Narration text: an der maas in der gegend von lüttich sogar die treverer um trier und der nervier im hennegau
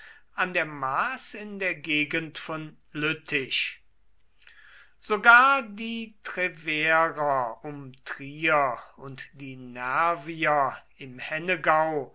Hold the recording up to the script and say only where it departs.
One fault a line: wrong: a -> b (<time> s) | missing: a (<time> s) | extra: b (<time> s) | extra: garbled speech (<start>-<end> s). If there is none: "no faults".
wrong: der -> die (9.3 s)